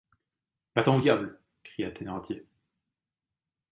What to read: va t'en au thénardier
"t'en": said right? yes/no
yes